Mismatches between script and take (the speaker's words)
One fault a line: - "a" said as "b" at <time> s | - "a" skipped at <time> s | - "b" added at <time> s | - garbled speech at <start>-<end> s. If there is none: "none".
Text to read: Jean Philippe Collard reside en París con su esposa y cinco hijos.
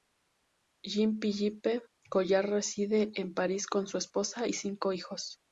none